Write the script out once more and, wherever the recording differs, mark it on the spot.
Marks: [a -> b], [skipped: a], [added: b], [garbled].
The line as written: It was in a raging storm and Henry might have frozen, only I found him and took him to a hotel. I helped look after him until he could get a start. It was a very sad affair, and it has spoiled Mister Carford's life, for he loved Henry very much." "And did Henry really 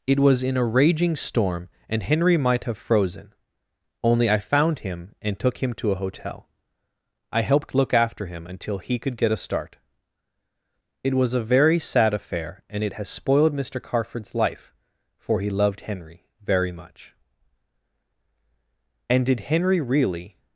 It was in a raging storm and Henry might have frozen, only I found him and took him to a hotel. I helped look after him until he could get a start. It was a very sad affair, and it has spoiled Mister Carford's life, for he loved Henry very much." "And did Henry really